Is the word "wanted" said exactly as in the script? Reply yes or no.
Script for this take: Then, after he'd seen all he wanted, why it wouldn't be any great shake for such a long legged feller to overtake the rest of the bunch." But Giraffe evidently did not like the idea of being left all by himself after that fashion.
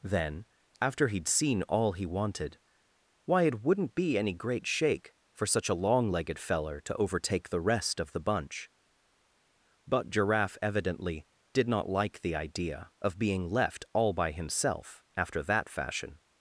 yes